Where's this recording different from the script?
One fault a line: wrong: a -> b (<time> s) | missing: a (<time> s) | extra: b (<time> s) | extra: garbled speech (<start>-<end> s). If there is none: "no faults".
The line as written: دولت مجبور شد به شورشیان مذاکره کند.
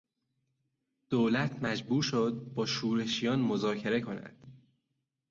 wrong: به -> با (2.5 s)